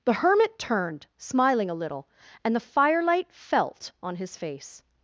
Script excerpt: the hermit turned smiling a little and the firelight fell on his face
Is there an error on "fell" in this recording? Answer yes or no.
yes